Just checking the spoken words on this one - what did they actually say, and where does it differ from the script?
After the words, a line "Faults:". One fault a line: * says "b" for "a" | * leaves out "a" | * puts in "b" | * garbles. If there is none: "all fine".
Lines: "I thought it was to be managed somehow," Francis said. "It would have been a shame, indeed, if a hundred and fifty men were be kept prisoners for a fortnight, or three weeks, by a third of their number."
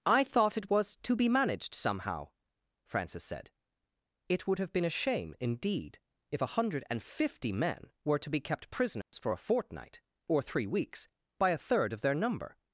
"I thought it was to be managed somehow," Francis said. "It would have been a shame, indeed, if a hundred and fifty men were to be kept prisoners for a fortnight, or three weeks, by a third of their number."
Faults:
* puts in "to"